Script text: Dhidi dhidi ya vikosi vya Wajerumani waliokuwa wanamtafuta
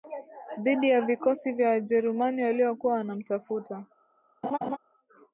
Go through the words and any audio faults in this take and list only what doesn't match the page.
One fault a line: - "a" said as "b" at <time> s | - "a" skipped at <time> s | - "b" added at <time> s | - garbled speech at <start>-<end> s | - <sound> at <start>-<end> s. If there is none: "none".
- "dhidi" skipped at 0.9 s
- laugh at 4.4-4.8 s